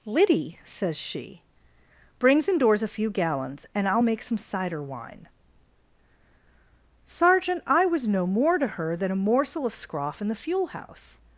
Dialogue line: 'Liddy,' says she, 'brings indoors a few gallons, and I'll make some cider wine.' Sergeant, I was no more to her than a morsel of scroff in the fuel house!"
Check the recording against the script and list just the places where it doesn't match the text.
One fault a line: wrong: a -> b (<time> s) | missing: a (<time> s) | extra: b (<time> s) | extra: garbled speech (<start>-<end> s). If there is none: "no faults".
no faults